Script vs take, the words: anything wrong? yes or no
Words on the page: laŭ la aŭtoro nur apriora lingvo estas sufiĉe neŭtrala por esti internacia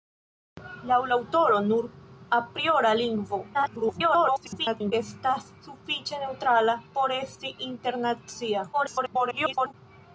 yes